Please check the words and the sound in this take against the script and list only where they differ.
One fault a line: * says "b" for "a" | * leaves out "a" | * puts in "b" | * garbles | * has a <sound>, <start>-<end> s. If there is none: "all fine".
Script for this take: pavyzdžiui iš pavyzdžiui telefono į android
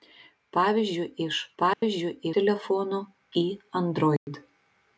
* has a dropout, 1.7-1.8 s
* has a dropout, 4.2-4.3 s